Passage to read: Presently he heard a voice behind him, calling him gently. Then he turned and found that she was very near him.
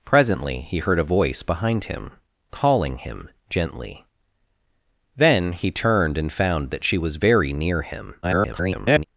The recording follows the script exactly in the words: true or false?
false